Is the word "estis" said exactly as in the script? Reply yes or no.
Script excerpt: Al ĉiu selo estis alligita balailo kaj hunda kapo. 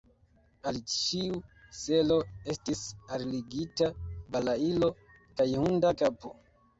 yes